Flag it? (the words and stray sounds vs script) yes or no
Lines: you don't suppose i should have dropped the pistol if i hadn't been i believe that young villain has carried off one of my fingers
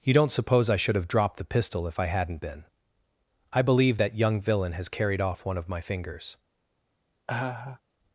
yes